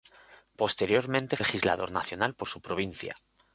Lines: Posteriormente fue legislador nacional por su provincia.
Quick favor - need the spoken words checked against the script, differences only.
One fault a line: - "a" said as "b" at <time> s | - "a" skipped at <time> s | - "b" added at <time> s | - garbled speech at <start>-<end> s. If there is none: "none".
- "fue" skipped at 1.4 s